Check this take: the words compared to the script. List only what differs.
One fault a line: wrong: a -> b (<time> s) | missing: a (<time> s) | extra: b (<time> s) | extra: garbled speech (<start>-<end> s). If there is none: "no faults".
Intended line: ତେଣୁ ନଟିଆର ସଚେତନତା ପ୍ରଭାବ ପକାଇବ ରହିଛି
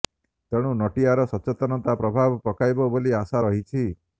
extra: ବୋଲି ଆଶା (2.9 s)